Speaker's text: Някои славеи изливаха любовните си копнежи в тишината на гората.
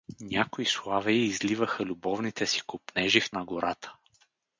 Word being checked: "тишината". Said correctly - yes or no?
no